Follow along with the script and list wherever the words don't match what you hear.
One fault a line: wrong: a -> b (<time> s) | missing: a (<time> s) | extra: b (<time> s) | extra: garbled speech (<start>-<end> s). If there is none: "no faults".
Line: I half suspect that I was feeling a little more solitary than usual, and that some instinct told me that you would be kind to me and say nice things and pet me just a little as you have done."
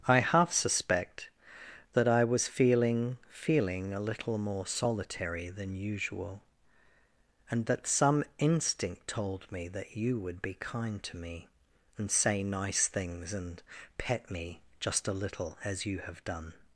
extra: feeling (3.3 s)